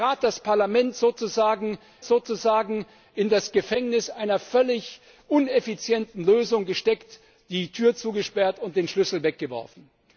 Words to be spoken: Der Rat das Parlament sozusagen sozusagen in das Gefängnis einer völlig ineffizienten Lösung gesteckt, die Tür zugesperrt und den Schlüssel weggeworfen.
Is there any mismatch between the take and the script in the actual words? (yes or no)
no